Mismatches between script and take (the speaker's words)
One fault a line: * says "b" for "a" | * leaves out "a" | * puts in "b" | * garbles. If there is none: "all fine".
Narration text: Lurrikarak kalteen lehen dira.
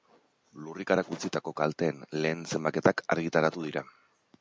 * puts in "utzitako"
* puts in "zenbaketak argitaratu"